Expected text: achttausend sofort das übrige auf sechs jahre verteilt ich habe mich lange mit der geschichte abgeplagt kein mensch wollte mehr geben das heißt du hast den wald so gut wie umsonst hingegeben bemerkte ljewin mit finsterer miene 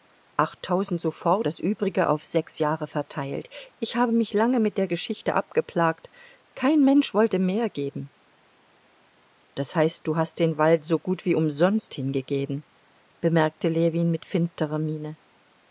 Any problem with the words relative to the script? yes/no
no